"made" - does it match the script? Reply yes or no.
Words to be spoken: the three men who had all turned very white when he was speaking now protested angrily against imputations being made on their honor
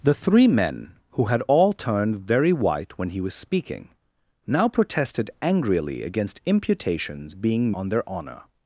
no